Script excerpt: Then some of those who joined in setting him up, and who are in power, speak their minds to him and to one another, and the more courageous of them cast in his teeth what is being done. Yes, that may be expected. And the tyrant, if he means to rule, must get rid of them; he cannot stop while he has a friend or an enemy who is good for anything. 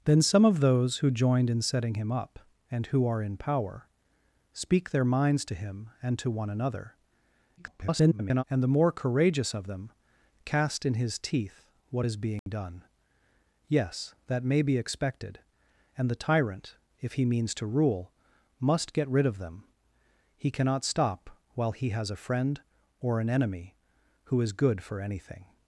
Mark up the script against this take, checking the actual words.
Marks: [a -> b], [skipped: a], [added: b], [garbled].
Then some of those who joined in setting him up, and who are in power, speak their minds to him and to one another, [garbled] and the more courageous of them cast in his teeth what is being done. Yes, that may be expected. And the tyrant, if he means to rule, must get rid of them; he cannot stop while he has a friend or an enemy who is good for anything.